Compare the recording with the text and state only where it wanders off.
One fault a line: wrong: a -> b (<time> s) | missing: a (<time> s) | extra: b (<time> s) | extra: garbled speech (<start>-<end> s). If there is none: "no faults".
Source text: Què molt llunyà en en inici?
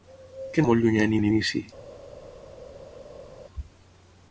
no faults